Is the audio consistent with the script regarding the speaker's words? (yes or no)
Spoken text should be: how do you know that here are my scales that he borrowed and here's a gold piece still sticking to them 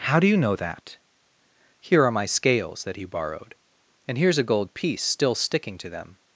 yes